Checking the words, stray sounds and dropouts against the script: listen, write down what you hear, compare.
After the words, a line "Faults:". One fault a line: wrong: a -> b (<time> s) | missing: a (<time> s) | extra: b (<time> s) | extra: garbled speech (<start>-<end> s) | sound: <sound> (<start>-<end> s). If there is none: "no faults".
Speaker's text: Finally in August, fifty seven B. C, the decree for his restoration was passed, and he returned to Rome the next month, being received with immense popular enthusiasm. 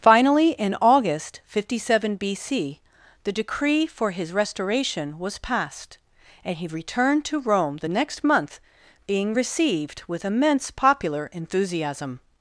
Finally in August, fifty seven B. C, the decree for his restoration was passed, and he returned to Rome the next month, being received with immense popular enthusiasm.
Faults:
no faults